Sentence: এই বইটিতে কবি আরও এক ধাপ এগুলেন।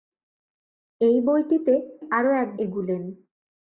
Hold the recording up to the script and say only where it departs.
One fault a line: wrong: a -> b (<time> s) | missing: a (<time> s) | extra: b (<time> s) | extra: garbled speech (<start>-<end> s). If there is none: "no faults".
missing: কবি (1.7 s)
missing: ধাপ (2.5 s)